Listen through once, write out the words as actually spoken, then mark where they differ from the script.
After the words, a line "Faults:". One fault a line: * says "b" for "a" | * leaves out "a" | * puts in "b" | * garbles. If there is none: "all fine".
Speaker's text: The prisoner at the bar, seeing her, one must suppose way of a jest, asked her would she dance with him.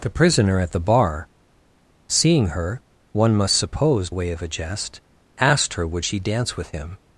The prisoner at the bar, seeing her, one must suppose way of a jest, asked her would she dance with him.
Faults:
all fine